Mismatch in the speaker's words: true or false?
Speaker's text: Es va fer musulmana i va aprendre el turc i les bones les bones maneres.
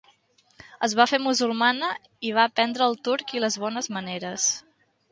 true